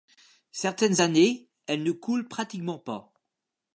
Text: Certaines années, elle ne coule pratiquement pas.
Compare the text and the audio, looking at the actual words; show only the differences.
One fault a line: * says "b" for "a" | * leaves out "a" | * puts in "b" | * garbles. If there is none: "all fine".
all fine